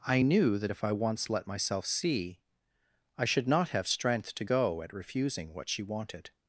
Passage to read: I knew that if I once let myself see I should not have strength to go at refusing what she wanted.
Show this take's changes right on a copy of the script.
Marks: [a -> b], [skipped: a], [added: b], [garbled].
I knew that if I once let myself see I should not have strength to go at refusing what she wanted.